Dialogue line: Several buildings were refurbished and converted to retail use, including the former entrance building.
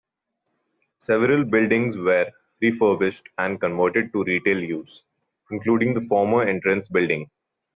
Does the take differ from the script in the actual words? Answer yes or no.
no